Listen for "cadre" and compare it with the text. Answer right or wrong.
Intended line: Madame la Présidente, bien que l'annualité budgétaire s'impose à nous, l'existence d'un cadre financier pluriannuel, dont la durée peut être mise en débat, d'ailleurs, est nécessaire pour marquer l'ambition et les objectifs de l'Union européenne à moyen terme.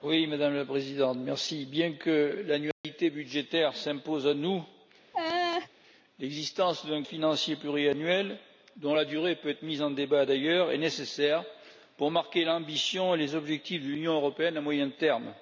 wrong